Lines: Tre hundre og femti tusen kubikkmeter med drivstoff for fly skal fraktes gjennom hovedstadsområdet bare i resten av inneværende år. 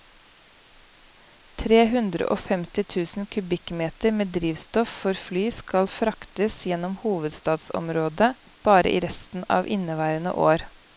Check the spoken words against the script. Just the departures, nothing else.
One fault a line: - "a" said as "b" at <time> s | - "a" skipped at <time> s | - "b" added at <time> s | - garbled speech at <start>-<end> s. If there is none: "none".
none